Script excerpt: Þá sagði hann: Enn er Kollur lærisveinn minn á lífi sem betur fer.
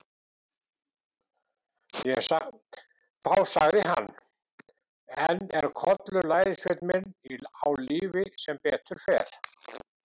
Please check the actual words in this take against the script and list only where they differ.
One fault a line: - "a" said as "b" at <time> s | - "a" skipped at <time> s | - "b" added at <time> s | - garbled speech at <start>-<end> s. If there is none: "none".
none